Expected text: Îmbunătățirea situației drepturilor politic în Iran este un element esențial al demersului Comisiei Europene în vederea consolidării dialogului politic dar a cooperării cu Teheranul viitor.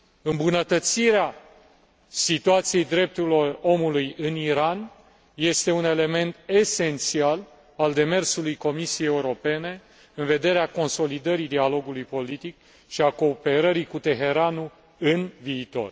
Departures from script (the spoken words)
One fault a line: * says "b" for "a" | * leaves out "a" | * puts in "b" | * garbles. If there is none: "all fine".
* says "omului" for "politic"
* says "și" for "dar"
* puts in "în"